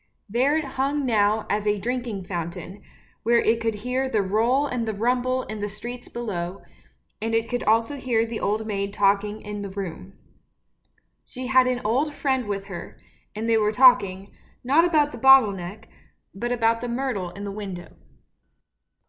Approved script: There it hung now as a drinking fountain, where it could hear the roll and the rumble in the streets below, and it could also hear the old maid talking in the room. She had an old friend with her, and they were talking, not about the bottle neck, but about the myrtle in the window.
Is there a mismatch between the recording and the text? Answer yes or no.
no